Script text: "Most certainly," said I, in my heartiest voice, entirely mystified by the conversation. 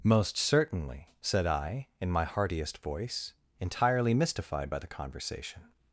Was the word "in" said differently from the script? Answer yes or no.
no